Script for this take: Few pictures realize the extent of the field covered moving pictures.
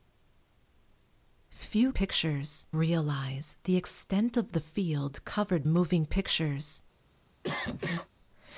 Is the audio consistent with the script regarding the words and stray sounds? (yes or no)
no